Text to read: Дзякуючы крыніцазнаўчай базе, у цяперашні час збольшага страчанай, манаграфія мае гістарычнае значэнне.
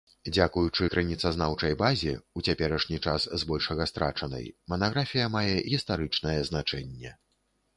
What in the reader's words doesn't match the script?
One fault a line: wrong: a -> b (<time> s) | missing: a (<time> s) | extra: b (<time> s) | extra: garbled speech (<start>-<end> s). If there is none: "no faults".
no faults